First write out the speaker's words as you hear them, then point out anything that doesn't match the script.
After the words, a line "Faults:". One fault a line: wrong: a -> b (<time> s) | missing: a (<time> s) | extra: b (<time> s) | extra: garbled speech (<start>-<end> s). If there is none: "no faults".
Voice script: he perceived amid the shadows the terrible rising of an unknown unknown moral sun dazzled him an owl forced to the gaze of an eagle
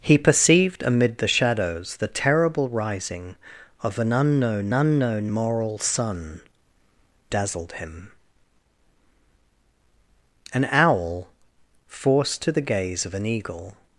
he perceived amid the shadows the terrible rising of an unknown unknown moral sun dazzled him an owl forced to the gaze of an eagle
Faults:
no faults